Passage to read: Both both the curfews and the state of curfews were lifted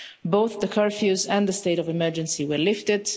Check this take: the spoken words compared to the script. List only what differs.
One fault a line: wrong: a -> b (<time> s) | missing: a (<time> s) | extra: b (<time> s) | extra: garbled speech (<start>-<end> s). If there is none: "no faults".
missing: both (0.6 s)
wrong: curfews -> emergency (1.9 s)